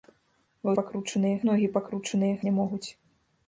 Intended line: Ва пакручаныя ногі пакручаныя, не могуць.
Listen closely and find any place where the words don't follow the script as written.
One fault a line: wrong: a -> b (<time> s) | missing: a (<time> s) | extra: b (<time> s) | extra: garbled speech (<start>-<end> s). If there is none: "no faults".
no faults